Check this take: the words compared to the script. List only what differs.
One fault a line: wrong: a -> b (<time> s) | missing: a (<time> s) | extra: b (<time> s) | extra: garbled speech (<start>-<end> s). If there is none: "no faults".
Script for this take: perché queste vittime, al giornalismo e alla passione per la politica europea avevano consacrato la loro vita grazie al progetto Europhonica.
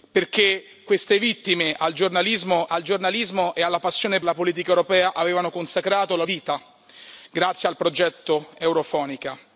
extra: al giornalismo (2.7 s)
missing: per (4.2 s)
missing: loro (6.2 s)